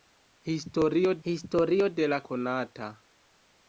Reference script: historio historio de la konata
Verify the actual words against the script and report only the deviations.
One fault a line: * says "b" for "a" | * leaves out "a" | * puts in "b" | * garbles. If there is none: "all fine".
all fine